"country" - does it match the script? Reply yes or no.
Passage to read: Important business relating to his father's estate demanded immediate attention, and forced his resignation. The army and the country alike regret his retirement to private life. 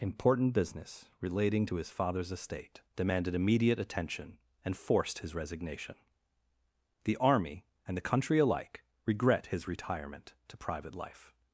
yes